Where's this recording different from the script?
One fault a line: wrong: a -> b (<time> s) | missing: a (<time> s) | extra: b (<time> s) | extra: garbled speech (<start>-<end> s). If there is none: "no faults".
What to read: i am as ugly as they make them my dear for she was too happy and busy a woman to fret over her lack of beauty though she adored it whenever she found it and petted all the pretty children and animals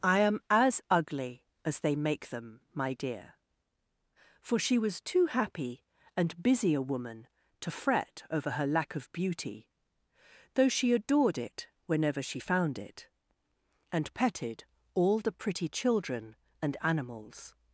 no faults